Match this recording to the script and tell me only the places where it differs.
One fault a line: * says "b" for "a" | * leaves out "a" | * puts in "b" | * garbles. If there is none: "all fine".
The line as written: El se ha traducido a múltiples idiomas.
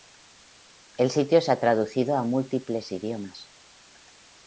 * puts in "sitio"